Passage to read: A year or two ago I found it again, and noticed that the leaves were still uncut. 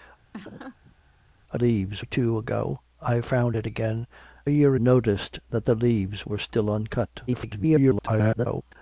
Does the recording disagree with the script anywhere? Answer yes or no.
yes